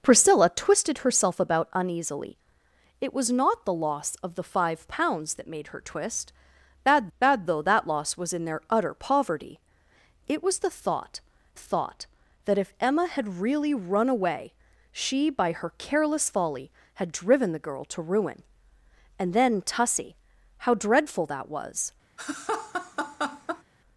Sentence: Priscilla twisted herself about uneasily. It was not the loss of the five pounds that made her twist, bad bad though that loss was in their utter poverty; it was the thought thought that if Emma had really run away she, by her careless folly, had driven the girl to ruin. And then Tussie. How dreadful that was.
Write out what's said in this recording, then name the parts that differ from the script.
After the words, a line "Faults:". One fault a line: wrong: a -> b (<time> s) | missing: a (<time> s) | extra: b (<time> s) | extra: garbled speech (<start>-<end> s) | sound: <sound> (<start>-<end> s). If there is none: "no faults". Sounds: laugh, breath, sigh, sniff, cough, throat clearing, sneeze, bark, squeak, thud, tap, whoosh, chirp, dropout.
Priscilla twisted herself about uneasily. It was not the loss of the five pounds that made her twist, bad bad though that loss was in their utter poverty; it was the thought thought that if Emma had really run away she, by her careless folly, had driven the girl to ruin. And then Tussie. How dreadful that was.
Faults:
sound: laugh (22.2-23.6 s)